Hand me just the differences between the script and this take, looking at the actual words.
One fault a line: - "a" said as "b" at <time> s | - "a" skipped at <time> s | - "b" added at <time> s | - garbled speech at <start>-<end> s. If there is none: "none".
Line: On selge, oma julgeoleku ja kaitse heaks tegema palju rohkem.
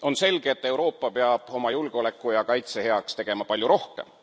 - "et Euroopa peab" added at 0.5 s